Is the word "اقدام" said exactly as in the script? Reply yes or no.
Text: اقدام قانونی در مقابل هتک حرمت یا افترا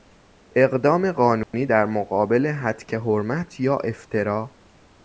yes